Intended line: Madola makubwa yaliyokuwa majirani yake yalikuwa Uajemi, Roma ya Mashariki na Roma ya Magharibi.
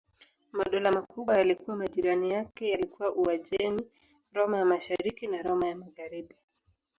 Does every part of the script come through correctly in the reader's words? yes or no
yes